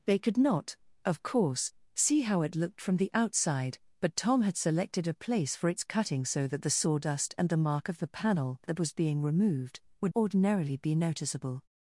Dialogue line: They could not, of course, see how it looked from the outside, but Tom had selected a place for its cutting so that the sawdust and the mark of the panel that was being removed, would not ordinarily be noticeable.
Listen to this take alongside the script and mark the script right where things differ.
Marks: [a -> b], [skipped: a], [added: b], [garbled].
They could not, of course, see how it looked from the outside, but Tom had selected a place for its cutting so that the sawdust and the mark of the panel that was being removed, would [skipped: not] ordinarily be noticeable.